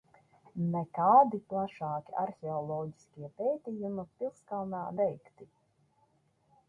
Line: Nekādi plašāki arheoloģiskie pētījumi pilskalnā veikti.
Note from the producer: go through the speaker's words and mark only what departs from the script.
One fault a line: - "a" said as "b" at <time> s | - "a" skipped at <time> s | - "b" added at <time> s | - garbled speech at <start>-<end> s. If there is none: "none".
none